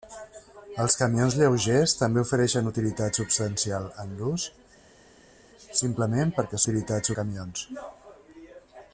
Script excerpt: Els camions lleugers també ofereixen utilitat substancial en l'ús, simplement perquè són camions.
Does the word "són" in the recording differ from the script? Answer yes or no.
yes